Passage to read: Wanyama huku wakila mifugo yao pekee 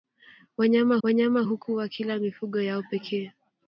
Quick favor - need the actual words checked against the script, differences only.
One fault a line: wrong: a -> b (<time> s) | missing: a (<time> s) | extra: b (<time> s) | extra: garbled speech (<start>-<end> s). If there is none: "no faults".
extra: wanyama (1.0 s)